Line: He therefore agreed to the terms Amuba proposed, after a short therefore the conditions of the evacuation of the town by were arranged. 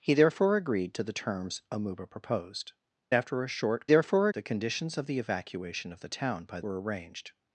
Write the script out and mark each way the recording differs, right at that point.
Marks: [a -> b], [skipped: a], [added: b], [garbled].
He therefore agreed to the terms Amuba proposed, after a short therefore the conditions of the evacuation of the town by were arranged.